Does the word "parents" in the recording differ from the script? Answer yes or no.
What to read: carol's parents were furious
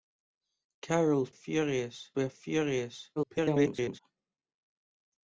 yes